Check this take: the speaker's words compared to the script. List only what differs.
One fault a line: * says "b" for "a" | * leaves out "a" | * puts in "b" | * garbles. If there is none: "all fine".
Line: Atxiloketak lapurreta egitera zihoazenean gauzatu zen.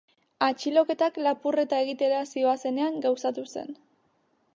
all fine